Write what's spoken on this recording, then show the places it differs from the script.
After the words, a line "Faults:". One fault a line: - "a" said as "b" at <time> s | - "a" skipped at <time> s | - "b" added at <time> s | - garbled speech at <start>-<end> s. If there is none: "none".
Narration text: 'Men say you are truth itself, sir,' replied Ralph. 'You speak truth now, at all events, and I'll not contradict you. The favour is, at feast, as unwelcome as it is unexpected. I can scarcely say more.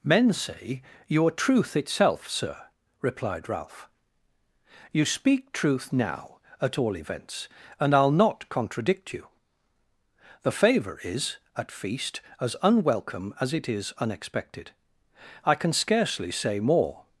'Men say you are truth itself, sir,' replied Ralph. 'You speak truth now, at all events, and I'll not contradict you. The favour is, at feast, as unwelcome as it is unexpected. I can scarcely say more.
Faults:
none